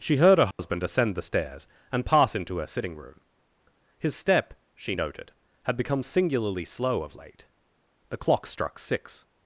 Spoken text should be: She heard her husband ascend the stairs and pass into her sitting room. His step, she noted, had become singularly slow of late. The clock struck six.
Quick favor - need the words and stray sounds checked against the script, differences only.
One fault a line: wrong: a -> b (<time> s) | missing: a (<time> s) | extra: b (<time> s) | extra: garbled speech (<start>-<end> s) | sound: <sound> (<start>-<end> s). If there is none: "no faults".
sound: dropout (0.5-0.6 s)